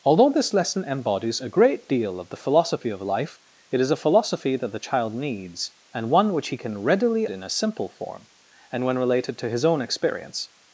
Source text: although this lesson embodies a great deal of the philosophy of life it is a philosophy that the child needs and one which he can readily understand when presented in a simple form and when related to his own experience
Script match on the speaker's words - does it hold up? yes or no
no